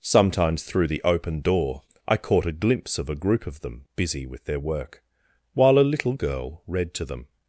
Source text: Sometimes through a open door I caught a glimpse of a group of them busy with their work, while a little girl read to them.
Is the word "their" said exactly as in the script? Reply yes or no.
yes